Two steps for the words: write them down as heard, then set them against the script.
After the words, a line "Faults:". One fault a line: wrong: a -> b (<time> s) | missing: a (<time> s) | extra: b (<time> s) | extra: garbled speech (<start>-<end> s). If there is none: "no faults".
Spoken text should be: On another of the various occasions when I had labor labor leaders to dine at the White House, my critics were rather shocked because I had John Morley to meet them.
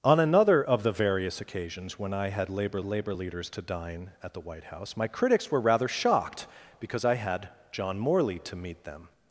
On another of the various occasions when I had labor labor leaders to dine at the White House, my critics were rather shocked because I had John Morley to meet them.
Faults:
no faults